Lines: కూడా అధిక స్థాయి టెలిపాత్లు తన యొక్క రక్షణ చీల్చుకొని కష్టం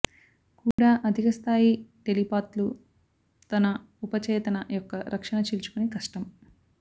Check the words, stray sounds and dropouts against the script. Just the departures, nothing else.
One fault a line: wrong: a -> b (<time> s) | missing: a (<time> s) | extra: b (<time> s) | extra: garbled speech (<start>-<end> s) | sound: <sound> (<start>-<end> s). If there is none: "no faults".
sound: dropout (0.7-0.8 s)
extra: ఉపచేతన (4.0 s)